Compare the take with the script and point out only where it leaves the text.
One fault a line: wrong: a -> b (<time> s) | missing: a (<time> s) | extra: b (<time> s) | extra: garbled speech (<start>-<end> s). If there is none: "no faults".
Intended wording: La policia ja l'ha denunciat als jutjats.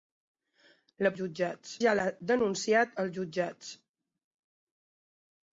wrong: policia -> jutjats (1.2 s)